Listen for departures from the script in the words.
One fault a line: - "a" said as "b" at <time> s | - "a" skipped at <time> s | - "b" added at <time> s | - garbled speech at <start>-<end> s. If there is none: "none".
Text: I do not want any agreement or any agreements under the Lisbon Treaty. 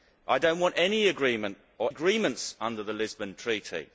- "any" skipped at 1.9 s